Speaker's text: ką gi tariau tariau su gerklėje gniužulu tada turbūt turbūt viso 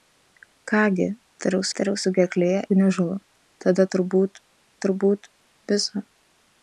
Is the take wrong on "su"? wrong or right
right